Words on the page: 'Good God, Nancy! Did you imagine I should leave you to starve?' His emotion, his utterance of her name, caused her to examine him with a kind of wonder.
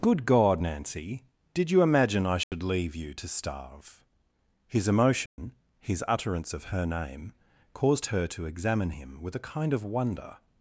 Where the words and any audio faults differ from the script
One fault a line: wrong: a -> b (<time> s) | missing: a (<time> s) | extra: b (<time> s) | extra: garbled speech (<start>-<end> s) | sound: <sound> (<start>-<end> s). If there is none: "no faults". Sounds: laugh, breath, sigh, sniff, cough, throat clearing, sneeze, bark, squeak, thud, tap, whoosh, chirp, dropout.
sound: dropout (2.4-2.5 s)
sound: dropout (5.3-5.4 s)